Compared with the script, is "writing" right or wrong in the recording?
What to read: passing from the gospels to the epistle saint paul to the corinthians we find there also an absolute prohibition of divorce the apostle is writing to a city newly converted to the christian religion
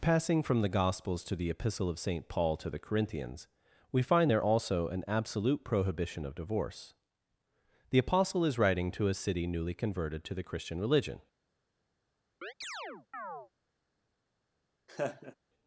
right